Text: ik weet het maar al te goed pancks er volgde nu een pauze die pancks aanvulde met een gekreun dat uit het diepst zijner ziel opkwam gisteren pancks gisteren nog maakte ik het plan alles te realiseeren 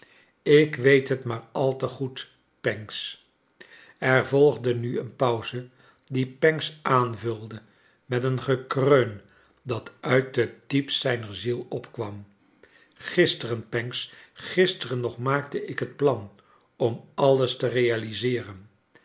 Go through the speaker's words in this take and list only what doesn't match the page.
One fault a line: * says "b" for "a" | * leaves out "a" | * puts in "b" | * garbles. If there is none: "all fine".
* puts in "om"